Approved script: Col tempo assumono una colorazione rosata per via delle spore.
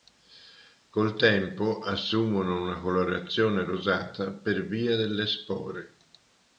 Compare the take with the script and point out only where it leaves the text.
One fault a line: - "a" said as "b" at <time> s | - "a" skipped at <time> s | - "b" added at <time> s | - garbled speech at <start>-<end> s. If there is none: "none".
none